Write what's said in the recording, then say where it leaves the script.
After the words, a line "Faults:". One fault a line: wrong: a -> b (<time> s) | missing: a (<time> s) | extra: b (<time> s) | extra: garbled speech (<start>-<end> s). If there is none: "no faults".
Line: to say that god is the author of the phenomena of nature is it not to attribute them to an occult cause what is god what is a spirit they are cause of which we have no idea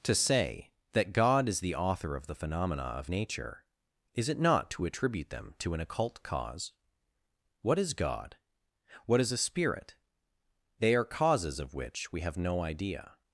to say that god is the author of the phenomena of nature is it not to attribute them to an occult cause what is god what is a spirit they are causes of which we have no idea
Faults:
wrong: cause -> causes (11.0 s)